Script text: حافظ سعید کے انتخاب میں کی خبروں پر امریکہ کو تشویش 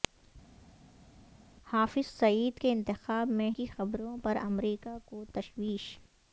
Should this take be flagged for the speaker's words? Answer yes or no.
no